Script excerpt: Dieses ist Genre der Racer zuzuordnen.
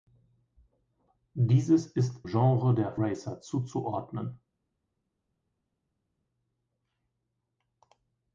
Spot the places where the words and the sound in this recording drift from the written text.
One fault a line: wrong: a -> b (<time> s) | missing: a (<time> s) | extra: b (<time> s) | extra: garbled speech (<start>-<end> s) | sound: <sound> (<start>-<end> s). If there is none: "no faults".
no faults